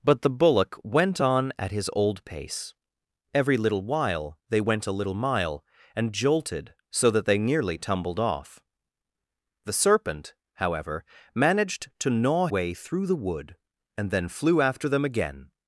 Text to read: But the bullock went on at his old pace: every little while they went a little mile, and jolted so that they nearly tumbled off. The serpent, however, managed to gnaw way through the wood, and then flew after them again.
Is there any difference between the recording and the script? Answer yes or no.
no